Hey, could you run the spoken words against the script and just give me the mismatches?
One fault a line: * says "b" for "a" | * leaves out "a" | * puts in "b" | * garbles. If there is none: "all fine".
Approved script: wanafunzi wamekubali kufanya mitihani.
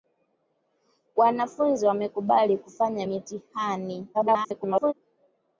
* garbles